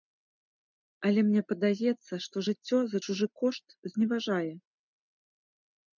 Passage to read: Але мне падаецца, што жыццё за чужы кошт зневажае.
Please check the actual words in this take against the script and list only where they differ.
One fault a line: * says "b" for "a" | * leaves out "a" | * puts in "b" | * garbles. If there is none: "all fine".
all fine